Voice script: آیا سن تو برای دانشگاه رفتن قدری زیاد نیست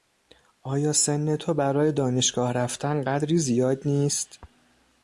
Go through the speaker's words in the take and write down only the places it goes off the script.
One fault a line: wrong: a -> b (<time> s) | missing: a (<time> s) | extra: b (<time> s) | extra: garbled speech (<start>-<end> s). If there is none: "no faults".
no faults